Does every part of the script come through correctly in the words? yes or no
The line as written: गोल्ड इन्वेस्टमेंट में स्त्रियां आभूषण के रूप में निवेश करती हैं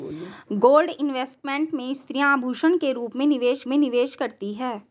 no